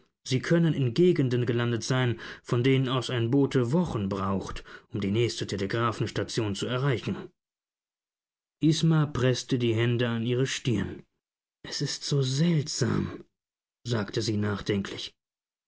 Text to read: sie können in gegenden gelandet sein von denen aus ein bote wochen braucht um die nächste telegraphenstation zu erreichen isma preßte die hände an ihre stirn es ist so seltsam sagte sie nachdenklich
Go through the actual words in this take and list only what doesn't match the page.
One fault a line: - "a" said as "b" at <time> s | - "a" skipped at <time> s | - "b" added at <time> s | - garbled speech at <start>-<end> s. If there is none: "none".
none